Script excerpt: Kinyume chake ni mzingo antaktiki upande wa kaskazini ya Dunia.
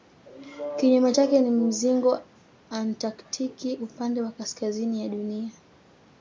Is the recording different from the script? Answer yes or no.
no